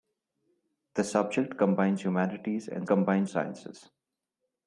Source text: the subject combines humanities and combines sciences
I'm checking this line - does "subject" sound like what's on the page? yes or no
yes